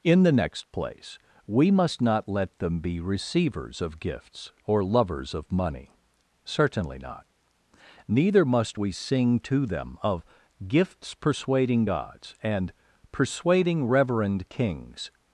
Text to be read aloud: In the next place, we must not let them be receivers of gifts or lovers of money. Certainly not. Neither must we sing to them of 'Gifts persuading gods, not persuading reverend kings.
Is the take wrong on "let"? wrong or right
right